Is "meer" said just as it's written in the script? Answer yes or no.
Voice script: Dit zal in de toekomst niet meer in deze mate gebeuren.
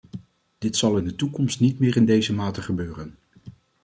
yes